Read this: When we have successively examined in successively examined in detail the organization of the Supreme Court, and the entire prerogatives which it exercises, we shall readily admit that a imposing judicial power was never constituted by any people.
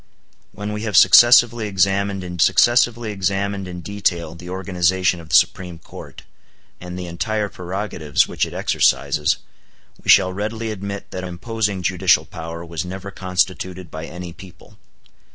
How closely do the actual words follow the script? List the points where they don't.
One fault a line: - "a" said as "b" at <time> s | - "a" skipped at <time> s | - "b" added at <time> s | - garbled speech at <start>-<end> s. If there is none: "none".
none